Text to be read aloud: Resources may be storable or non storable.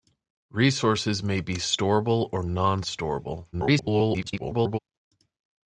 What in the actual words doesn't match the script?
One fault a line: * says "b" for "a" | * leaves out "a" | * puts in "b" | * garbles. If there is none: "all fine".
* garbles